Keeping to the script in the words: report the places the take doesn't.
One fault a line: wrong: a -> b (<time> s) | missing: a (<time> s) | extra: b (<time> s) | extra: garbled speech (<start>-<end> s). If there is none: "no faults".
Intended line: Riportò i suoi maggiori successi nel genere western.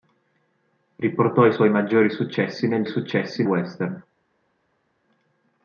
wrong: genere -> successi (2.9 s)